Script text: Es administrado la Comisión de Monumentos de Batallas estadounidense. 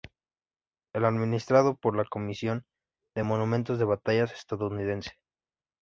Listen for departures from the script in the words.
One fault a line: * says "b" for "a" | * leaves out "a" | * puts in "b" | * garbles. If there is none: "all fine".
* puts in "por"